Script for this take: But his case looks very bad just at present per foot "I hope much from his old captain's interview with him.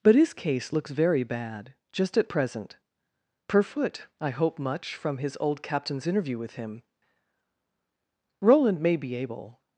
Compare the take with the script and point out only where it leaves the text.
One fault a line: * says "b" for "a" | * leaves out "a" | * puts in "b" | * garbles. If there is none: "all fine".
* puts in "Roland may be able"